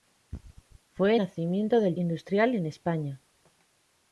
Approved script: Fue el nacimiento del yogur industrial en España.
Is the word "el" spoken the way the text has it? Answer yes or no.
no